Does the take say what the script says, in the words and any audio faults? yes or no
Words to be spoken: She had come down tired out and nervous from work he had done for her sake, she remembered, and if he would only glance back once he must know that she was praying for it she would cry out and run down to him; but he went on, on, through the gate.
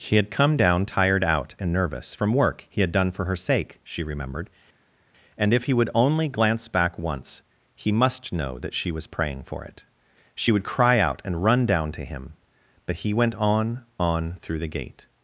yes